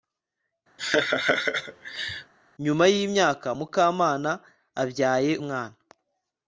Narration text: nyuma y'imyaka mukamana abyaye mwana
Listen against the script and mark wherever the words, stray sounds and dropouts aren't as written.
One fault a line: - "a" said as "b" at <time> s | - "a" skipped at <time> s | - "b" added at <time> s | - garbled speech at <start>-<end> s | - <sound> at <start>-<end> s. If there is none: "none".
- laugh at 0.8-2.3 s